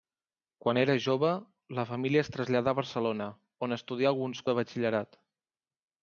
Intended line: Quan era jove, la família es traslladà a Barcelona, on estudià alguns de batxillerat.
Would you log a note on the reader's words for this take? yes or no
no